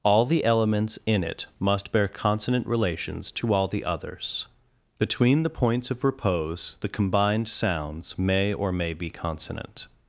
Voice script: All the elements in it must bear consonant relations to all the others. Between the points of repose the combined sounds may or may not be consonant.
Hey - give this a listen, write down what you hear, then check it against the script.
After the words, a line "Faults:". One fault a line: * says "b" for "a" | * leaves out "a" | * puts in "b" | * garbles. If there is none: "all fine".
All the elements in it must bear consonant relations to all the others. Between the points of repose the combined sounds may or may be consonant.
Faults:
* leaves out "not"